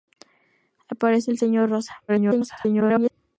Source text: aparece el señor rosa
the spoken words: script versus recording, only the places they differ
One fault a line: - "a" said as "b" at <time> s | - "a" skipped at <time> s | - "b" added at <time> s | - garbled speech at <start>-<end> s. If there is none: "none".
- garbled speech at 2.1-3.1 s